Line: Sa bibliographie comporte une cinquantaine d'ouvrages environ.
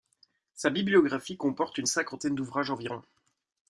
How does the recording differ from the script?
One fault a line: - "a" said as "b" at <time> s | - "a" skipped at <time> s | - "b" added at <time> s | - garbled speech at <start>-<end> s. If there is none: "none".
none